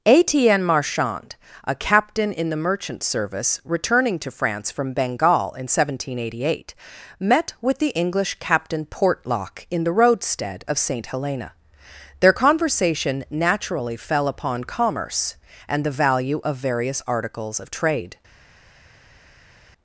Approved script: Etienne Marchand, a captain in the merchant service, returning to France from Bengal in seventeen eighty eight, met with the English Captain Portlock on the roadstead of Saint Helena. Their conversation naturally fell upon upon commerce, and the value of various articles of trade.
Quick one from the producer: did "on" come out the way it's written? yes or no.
no